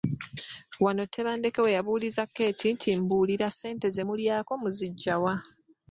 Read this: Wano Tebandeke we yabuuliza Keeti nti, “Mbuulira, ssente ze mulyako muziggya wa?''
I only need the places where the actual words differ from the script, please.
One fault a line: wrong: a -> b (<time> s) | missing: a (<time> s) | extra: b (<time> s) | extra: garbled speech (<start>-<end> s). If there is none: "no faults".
no faults